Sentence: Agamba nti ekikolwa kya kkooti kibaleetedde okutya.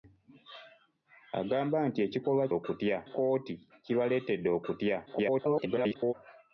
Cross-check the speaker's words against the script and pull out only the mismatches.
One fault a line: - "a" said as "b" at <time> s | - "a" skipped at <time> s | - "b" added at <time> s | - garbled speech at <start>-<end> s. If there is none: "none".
- "kya" said as "okutya" at 2.6 s
- garbled speech at 5.1-6.1 s